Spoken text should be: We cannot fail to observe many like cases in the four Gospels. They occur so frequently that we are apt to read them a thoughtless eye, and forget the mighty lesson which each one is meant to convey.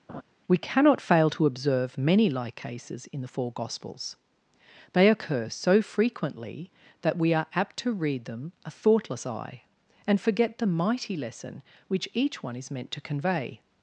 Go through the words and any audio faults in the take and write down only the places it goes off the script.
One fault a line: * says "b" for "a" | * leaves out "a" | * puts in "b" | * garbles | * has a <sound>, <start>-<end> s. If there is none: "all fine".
* has a laugh, 0.1-0.2 s